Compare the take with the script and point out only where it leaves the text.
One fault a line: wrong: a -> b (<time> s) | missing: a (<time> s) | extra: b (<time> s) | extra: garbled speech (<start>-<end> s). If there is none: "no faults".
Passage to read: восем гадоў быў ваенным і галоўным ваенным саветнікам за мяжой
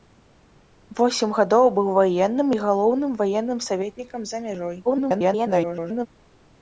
extra: garbled speech (4.9-6.1 s)